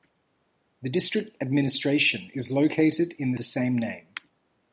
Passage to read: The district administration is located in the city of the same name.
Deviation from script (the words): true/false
true